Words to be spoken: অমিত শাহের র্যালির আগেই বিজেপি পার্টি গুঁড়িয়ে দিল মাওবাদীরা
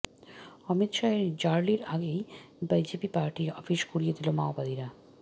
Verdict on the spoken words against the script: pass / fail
fail